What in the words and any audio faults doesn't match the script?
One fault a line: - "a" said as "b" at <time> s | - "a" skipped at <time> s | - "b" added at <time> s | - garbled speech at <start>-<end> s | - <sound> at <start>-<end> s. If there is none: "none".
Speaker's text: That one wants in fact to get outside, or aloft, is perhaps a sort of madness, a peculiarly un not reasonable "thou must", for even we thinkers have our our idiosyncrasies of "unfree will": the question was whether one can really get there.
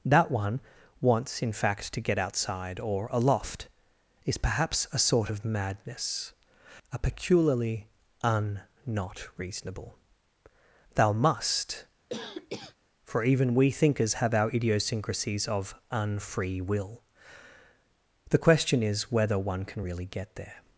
- cough at 12.1-12.8 s
- "our" skipped at 14.5 s
- "was" said as "is" at 18.8 s